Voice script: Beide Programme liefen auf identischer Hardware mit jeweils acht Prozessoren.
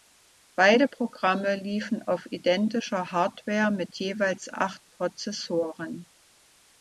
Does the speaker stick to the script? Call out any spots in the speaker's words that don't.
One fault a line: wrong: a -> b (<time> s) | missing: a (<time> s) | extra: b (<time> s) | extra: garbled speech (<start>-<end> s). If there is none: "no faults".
no faults